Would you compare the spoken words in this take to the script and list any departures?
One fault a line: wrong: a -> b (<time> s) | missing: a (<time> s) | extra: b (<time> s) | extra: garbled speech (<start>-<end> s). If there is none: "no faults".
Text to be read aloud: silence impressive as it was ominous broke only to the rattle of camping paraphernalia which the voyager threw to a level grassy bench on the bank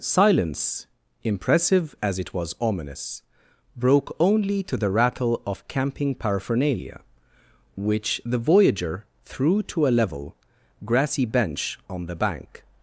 no faults